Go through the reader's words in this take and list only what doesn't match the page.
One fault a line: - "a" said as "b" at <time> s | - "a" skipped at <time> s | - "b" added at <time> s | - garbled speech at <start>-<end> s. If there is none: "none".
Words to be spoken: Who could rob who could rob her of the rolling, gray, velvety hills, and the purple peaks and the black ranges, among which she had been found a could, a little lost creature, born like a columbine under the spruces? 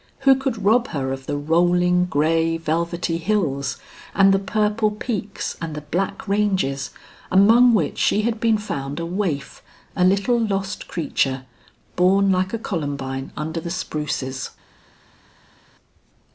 - "who could rob" skipped at 0.9 s
- "could" said as "waif" at 9.1 s